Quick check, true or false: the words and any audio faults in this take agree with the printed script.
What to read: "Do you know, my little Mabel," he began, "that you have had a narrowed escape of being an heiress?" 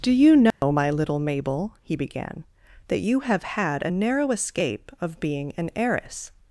false